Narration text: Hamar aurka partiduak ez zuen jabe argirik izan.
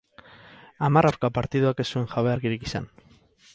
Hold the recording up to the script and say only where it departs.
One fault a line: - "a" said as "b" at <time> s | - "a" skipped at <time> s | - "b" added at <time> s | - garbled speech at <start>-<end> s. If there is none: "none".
none